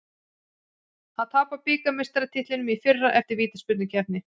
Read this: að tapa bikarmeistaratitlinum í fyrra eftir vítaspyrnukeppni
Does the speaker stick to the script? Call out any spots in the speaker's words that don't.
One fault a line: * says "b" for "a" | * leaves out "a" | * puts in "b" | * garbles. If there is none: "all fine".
all fine